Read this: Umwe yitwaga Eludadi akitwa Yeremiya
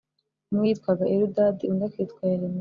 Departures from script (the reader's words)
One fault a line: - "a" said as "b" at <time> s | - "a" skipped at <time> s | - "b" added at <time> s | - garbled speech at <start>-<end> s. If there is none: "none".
- "undi" added at 1.7 s